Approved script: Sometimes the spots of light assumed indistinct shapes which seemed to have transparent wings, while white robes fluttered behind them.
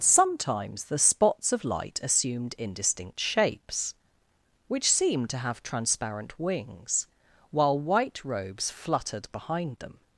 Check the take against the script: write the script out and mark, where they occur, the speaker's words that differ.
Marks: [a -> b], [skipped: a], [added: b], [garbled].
Sometimes the spots of light assumed indistinct shapes which seemed to have transparent wings, while white robes fluttered behind them.